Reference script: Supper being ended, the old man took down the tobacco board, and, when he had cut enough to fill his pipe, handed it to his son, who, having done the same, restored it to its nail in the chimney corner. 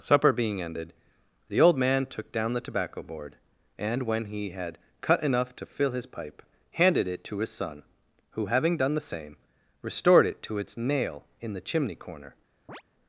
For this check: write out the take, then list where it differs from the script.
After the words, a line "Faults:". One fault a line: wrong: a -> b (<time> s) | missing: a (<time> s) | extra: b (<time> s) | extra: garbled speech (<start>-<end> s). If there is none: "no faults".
Supper being ended, the old man took down the tobacco board, and, when he had cut enough to fill his pipe, handed it to his son, who, having done the same, restored it to its nail in the chimney corner.
Faults:
no faults